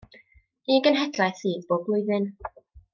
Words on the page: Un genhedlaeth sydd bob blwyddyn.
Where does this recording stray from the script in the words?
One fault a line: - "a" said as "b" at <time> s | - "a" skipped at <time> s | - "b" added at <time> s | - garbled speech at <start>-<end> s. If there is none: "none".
none